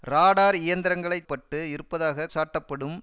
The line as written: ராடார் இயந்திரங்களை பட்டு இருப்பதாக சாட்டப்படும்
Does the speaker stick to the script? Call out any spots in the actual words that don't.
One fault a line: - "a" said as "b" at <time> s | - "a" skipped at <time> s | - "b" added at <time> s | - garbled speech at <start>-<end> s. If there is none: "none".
none